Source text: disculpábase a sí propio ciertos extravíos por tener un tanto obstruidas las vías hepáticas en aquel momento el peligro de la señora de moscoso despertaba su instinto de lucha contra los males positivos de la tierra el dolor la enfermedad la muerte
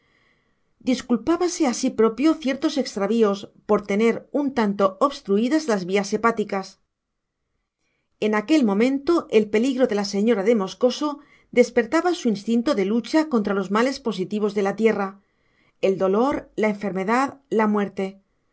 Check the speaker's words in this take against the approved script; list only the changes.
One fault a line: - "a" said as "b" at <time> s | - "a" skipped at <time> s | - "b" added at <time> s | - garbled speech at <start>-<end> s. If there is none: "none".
none